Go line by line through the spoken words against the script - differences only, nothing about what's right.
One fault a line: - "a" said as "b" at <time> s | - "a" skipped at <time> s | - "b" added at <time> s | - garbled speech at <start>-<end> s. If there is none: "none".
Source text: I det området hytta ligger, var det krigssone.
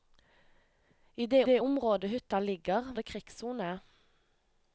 - "det" added at 1.4 s
- "var" skipped at 2.9 s